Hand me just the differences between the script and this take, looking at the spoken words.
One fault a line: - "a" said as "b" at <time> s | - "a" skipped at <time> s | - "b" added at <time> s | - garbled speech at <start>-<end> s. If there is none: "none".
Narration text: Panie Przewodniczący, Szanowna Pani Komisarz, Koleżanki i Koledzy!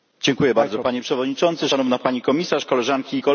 none